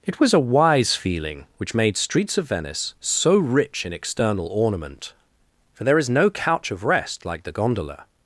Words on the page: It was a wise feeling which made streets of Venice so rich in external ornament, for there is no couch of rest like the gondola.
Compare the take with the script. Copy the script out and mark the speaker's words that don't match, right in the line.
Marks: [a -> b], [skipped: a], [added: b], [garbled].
It was a wise feeling which made streets of Venice so rich in external ornament, for there is no couch of rest like the gondola.